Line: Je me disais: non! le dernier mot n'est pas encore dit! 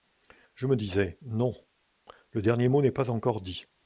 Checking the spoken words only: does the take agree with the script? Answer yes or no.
yes